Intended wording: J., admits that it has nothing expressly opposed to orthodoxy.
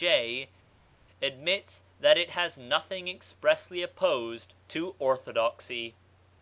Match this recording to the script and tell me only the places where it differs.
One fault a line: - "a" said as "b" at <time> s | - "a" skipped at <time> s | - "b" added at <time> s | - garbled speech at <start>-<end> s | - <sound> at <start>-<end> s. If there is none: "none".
none